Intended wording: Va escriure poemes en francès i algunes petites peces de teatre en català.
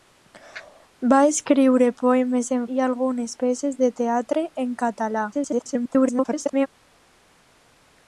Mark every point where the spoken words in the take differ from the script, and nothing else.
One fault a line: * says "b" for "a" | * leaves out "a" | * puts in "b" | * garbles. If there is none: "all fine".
* leaves out "francès"
* leaves out "petites"
* garbles